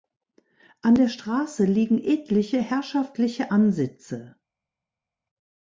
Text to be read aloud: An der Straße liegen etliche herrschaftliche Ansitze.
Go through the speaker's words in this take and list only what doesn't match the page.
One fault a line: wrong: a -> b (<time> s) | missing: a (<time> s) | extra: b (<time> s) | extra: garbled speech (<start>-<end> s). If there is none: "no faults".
no faults